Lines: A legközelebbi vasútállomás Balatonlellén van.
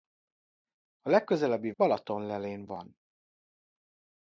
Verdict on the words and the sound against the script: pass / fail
fail